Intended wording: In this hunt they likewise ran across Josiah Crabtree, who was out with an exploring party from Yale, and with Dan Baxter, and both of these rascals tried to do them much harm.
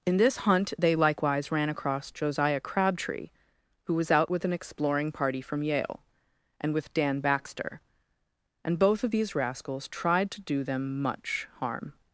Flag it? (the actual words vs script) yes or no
no